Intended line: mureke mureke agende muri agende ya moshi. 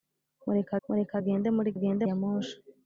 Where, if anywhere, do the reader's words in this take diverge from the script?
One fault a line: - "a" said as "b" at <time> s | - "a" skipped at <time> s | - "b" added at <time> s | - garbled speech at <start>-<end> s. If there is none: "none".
none